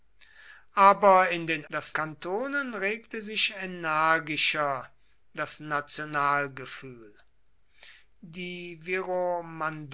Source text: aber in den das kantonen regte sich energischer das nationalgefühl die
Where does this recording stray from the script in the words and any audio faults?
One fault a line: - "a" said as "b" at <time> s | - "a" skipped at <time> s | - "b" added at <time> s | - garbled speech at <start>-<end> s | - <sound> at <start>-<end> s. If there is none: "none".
none